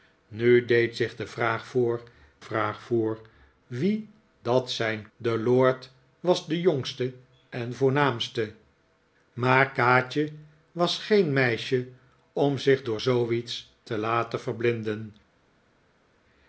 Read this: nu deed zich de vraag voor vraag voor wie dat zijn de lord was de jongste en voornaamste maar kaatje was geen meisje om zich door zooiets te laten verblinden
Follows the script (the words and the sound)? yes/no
yes